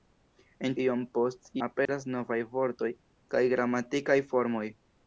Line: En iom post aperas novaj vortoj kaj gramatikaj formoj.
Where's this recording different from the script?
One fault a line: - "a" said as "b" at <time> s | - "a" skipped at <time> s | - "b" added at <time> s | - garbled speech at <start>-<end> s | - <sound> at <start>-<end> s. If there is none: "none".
- dropout at 1.9-1.9 s